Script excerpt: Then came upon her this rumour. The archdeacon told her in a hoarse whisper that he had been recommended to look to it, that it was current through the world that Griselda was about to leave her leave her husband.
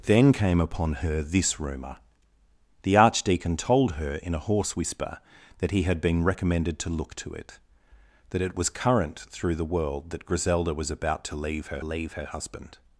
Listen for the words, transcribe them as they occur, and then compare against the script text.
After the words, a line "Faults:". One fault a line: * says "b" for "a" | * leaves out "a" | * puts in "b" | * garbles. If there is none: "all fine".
Then came upon her this rumour. The archdeacon told her in a hoarse whisper that he had been recommended to look to it, that it was current through the world that Griselda was about to leave her leave her husband.
Faults:
all fine